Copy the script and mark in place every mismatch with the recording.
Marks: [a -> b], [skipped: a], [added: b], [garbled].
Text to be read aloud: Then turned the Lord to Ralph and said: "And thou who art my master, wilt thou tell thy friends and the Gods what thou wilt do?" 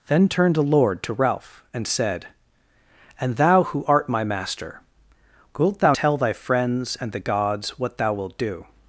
Then turned the Lord to Ralph and said: "And thou who art my master, wilt thou tell thy friends and the Gods what thou wilt do?"